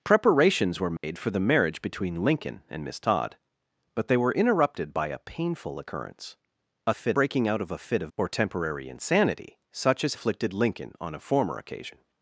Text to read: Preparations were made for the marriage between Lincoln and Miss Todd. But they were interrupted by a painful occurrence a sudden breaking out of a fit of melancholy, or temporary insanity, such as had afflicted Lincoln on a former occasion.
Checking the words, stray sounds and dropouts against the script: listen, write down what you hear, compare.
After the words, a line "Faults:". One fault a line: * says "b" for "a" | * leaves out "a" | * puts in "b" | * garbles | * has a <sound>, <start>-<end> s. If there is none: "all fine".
Preparations were made for the marriage between Lincoln and Miss Todd. But they were interrupted by a painful occurrence a fit breaking out of a fit of or temporary insanity, such as afflicted Lincoln on a former occasion.
Faults:
* has a dropout, 1.0-1.0 s
* says "fit" for "sudden"
* leaves out "melancholy"
* leaves out "had"